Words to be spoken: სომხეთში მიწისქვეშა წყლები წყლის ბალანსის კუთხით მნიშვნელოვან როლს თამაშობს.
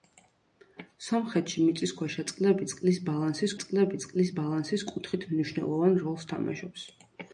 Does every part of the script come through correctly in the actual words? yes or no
no